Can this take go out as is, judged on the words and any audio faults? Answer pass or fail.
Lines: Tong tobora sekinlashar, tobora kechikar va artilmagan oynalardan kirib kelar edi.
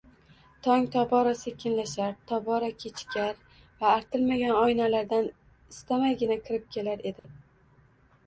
fail